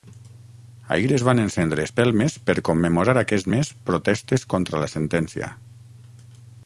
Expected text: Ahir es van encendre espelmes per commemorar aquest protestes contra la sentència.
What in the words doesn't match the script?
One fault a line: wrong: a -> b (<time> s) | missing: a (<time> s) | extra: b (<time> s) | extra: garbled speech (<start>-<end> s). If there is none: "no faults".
extra: mes (3.5 s)